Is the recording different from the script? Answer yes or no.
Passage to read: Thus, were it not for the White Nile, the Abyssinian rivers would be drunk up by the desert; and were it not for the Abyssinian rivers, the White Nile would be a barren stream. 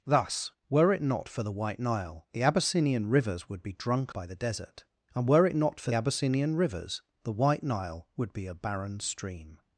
yes